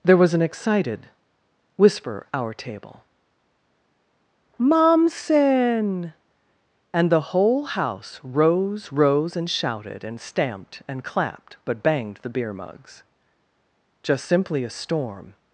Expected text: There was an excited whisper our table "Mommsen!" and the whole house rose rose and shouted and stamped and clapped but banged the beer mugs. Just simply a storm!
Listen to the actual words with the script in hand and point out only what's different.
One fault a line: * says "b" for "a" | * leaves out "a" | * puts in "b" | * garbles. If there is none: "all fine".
all fine